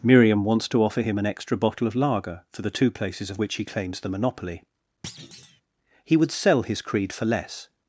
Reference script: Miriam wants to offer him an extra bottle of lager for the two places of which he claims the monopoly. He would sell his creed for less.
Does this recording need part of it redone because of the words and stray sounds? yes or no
yes